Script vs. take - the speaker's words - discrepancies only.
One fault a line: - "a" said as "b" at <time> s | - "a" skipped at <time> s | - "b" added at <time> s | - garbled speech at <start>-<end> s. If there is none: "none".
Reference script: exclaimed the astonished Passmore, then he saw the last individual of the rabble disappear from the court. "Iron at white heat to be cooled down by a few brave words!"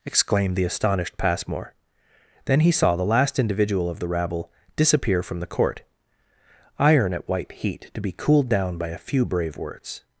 none